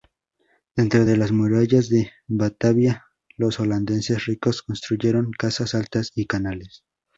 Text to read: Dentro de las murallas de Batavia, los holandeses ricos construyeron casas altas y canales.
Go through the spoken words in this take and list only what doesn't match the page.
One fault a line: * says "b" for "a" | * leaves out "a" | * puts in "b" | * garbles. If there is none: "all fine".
all fine